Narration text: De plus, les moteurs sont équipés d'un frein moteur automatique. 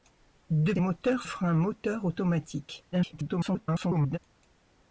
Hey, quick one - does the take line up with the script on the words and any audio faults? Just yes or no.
no